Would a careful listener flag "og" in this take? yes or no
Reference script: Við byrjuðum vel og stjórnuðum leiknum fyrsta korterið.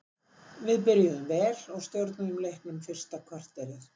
no